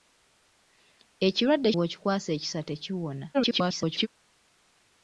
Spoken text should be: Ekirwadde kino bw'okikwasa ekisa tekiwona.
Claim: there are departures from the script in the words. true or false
true